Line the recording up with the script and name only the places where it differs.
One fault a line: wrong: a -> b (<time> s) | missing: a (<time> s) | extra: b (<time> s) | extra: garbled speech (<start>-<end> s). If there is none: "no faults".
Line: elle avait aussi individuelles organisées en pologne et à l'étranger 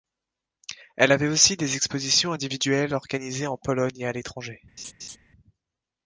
extra: des expositions (1.6 s)